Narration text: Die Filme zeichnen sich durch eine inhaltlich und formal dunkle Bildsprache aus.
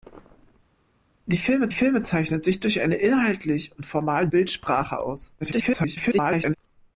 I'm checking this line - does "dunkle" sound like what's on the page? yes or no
no